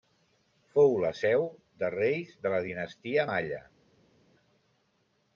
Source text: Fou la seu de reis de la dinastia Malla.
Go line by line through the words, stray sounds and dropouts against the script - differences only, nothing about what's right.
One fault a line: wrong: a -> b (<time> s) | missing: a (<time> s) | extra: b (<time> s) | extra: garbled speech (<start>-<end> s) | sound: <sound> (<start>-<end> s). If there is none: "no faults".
no faults